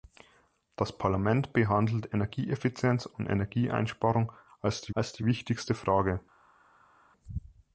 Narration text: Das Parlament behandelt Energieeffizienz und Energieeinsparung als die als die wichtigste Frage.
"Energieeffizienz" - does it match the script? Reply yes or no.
yes